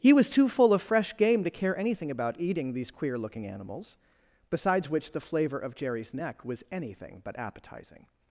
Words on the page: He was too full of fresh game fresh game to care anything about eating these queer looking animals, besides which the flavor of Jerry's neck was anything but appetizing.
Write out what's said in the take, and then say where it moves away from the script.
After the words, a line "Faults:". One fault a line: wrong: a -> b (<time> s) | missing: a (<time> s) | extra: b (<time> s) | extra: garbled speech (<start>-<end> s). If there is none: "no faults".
He was too full of fresh game to care anything about eating these queer looking animals, besides which the flavor of Jerry's neck was anything but appetizing.
Faults:
missing: fresh game (1.4 s)